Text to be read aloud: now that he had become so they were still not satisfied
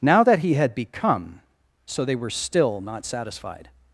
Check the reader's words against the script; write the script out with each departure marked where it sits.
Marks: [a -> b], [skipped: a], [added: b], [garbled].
now that he had become so they were still not satisfied